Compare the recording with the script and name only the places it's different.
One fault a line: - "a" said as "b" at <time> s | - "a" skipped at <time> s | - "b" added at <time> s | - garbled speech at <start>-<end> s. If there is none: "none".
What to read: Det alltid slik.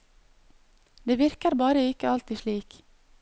- "virker bare ikke" added at 1.2 s